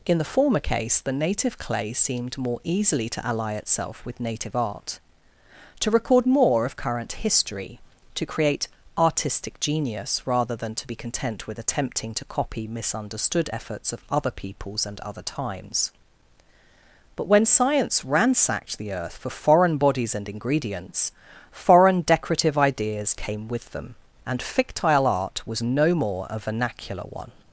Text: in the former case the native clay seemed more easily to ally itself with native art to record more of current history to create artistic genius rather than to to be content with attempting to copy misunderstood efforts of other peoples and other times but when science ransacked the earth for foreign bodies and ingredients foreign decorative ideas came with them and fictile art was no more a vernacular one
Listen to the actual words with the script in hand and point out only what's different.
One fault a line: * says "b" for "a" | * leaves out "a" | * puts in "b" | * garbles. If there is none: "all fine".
* leaves out "to"